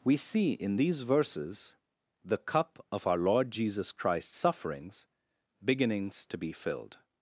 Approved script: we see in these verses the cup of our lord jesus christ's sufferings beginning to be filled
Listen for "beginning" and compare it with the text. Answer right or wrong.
wrong